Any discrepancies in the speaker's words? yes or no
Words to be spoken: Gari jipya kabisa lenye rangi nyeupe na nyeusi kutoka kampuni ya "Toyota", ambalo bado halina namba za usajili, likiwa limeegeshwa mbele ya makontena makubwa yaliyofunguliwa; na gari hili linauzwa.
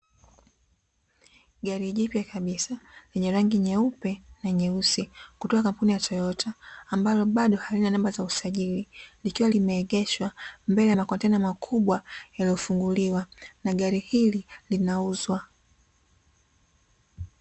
no